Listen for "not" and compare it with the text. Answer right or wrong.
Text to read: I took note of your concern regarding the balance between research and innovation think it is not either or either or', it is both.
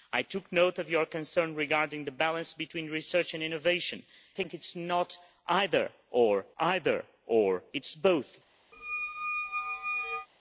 right